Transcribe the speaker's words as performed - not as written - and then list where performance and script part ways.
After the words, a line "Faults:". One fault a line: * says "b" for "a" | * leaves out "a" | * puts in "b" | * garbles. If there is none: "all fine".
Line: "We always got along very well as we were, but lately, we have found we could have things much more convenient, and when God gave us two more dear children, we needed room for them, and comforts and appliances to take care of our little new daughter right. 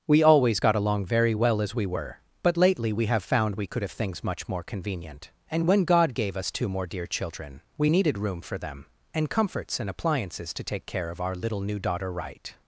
"We always got along very well as we were, but lately, we have found we could have things much more convenient, and when God gave us two more dear children, we needed room for them, and comforts and appliances to take care of our little new daughter right.
Faults:
all fine